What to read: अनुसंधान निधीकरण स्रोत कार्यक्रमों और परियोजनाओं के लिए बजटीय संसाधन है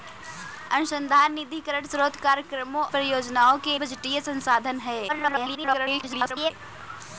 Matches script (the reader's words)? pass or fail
fail